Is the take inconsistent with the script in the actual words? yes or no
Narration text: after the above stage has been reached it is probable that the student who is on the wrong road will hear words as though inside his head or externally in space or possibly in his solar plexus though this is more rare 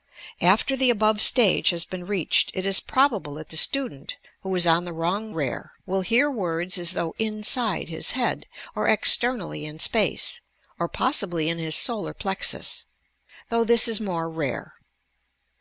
yes